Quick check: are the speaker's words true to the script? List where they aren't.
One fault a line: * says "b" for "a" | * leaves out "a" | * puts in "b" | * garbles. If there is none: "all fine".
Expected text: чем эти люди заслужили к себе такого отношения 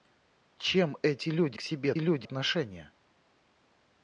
* leaves out "заслужили"
* says "люди" for "такого"